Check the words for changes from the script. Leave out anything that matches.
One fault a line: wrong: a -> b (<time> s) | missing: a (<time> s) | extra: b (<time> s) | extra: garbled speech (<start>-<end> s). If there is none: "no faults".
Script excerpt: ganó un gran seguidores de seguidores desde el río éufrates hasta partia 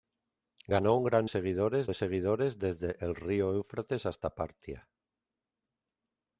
no faults